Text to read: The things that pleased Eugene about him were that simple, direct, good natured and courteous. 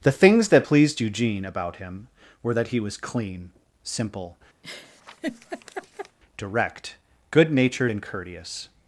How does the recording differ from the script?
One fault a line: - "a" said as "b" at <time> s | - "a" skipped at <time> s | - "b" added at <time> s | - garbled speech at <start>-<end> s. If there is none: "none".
- "he was clean" added at 2.7 s